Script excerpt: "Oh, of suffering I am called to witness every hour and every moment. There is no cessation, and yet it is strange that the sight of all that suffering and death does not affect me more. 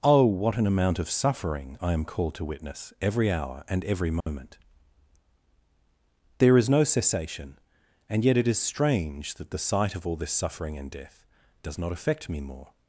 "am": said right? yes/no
yes